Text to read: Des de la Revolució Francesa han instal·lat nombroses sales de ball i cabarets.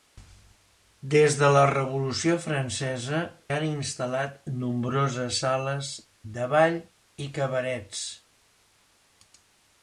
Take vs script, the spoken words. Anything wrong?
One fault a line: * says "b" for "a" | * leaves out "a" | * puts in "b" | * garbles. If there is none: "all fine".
all fine